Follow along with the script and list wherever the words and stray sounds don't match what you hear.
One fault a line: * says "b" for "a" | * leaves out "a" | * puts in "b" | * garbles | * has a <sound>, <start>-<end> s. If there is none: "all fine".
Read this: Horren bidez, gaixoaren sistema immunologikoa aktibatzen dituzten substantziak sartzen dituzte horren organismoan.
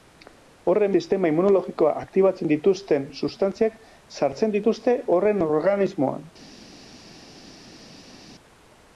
* leaves out "bidez gaixoaren"